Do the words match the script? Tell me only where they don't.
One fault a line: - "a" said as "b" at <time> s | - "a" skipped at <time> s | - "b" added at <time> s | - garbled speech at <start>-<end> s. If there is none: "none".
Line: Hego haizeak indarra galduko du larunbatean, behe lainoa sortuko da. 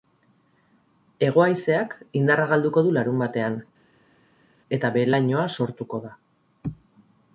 - "eta" added at 4.8 s